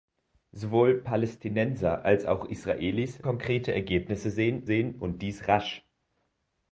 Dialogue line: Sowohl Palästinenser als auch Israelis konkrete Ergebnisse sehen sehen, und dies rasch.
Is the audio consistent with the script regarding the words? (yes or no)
yes